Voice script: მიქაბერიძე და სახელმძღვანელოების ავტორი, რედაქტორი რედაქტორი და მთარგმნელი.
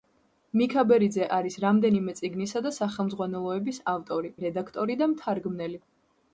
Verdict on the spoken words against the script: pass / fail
fail